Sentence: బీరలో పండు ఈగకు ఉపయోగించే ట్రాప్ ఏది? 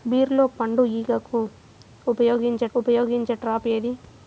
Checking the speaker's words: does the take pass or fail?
fail